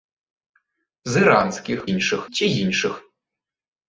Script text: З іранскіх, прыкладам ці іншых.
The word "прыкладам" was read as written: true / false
false